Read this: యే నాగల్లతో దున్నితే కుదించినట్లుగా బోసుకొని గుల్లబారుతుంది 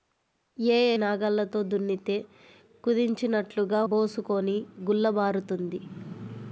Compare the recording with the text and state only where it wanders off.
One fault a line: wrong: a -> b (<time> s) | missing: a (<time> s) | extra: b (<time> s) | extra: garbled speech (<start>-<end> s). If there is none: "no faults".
no faults